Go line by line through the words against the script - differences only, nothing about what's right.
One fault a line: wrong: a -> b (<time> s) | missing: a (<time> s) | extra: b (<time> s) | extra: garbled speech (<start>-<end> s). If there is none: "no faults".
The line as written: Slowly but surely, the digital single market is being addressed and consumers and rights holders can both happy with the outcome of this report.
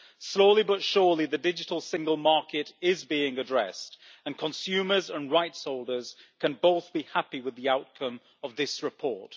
extra: be (6.9 s)